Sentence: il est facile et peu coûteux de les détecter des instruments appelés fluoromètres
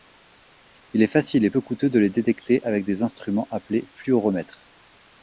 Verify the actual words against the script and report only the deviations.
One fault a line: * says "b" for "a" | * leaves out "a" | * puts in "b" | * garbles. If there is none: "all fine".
* puts in "avec"